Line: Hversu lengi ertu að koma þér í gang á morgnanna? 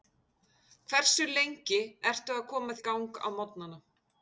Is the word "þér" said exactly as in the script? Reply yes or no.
no